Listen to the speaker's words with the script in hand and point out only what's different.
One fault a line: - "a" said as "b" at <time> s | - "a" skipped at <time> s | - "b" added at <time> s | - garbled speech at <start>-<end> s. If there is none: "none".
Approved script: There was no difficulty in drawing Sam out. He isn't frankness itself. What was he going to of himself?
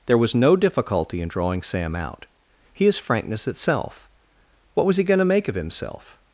- "isn't" said as "is" at 2.9 s
- "make" added at 5.2 s